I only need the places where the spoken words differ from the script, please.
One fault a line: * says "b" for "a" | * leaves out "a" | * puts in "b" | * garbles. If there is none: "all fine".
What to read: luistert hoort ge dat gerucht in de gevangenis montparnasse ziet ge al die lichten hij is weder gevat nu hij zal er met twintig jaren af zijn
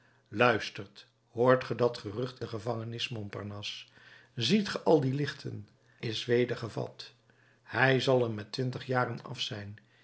* leaves out "in"
* leaves out "hij"
* leaves out "nu"